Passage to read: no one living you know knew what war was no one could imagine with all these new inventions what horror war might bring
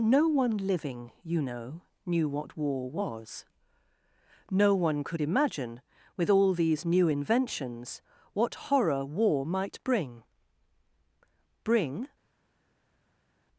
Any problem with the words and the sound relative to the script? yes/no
yes